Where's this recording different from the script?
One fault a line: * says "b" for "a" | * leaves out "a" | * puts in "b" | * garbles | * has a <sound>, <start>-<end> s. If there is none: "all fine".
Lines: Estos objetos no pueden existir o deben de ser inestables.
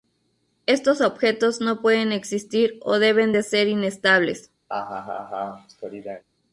* has a laugh, 4.7-6.2 s